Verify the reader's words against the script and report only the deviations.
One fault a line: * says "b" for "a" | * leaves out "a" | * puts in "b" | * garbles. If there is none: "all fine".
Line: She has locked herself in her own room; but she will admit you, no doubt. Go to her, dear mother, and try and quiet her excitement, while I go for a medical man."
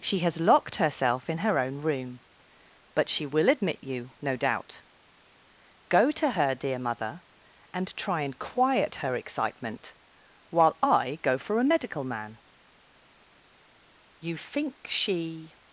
* puts in "You think she"